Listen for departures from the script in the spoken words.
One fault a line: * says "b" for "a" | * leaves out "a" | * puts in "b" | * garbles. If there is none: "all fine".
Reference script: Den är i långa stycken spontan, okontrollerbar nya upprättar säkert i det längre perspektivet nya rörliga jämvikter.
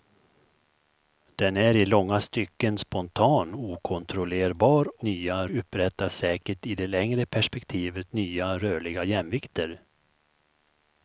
all fine